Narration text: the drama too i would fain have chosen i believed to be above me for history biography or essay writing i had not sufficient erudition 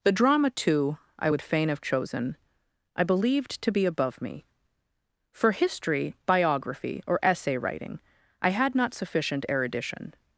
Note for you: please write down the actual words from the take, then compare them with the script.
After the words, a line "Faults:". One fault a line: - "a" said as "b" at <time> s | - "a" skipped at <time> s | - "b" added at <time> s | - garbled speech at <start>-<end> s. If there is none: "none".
the drama too i would fain have chosen i believed to be above me for history biography or essay writing i had not sufficient erudition
Faults:
none